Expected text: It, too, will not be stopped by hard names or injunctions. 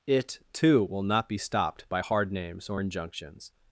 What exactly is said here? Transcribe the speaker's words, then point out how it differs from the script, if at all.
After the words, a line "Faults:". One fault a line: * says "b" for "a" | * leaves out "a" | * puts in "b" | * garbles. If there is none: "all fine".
It, too, will not be stopped by hard names or injunctions.
Faults:
all fine